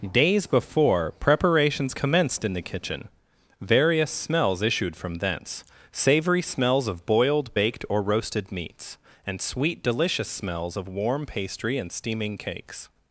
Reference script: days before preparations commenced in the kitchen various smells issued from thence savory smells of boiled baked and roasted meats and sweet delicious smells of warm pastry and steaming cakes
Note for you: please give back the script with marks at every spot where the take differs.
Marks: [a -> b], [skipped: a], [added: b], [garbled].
days before preparations commenced in the kitchen various smells issued from thence savory smells of boiled baked [and -> or] roasted meats and sweet delicious smells of warm pastry and steaming cakes